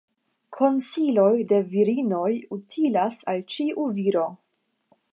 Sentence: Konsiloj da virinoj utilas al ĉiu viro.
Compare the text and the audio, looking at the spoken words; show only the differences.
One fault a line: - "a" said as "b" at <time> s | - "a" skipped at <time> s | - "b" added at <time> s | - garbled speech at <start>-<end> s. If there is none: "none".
- "da" said as "de" at 1.5 s